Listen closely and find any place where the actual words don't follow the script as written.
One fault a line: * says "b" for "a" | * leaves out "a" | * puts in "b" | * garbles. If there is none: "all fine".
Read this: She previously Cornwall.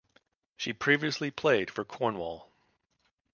* puts in "played for"